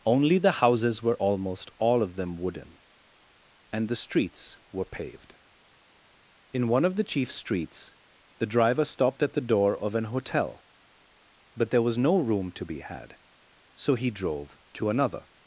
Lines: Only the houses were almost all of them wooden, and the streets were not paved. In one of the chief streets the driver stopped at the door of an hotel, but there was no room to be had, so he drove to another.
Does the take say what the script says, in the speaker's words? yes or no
no